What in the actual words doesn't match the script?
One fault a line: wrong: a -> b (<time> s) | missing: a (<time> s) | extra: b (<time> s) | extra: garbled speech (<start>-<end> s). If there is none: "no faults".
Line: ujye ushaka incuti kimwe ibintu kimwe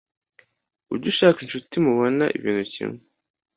wrong: kimwe -> mubona (1.8 s)